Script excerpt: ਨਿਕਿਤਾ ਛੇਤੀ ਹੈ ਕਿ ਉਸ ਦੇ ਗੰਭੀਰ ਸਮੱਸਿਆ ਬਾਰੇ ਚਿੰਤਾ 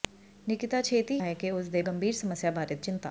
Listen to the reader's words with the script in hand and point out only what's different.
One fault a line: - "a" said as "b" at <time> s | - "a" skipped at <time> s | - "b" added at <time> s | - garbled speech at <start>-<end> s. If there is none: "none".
none